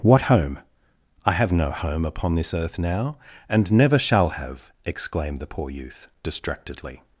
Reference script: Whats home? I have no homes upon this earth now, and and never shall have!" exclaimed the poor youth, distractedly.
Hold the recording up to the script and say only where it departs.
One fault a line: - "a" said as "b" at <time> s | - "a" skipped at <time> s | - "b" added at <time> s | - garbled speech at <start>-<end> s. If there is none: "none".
- "Whats" said as "What" at 0.0 s
- "homes" said as "home" at 1.7 s
- "and" skipped at 3.7 s